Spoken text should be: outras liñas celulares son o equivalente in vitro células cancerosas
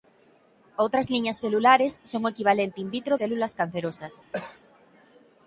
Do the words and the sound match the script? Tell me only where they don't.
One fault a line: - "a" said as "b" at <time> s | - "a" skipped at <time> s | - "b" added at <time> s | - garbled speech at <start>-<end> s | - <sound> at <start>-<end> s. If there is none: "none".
- cough at 4.3-4.6 s